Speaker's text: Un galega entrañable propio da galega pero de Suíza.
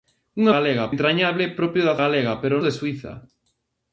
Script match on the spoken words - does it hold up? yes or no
yes